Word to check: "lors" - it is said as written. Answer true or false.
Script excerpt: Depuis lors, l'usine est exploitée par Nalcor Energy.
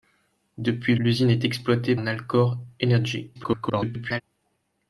false